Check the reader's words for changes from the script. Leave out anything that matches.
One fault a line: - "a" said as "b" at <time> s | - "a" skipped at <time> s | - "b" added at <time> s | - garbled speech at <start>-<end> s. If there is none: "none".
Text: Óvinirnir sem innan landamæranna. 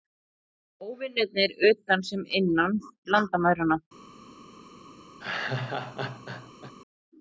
- "utan" added at 1.7 s